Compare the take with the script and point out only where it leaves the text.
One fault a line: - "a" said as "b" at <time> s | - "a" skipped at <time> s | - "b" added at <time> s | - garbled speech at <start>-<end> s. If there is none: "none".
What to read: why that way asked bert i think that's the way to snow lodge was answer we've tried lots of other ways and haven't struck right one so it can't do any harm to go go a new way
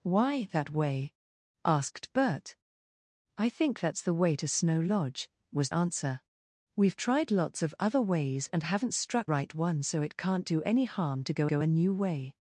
none